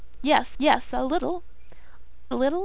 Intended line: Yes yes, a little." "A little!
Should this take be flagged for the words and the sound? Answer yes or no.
no